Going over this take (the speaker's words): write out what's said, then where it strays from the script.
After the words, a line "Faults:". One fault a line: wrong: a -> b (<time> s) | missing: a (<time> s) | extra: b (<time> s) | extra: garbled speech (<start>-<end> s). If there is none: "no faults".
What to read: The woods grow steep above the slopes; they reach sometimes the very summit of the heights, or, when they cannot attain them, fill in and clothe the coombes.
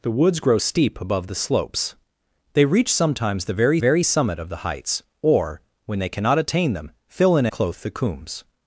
The woods grow steep above the slopes; they reach sometimes the very very summit of the heights, or, when they cannot attain them, fill in clothe the coombes.
Faults:
extra: very (3.8 s)
missing: and (7.5 s)